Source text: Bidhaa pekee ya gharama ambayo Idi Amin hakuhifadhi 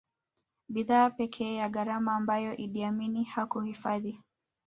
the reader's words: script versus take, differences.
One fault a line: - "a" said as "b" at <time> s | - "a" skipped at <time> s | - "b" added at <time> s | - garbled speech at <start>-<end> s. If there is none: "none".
none